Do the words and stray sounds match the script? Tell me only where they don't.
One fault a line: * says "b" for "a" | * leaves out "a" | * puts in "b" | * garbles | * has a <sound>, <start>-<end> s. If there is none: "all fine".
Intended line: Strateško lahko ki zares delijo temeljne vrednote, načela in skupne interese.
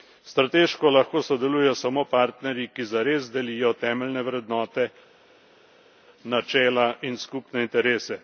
* puts in "sodelujejo samo partnerji"